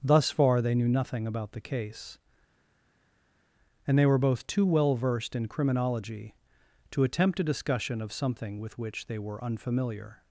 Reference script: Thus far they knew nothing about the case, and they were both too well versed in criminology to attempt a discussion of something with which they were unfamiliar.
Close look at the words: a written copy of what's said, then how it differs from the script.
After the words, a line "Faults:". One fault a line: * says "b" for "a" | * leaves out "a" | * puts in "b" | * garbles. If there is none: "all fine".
Thus far they knew nothing about the case, and they were both too well versed in criminology to attempt a discussion of something with which they were unfamiliar.
Faults:
all fine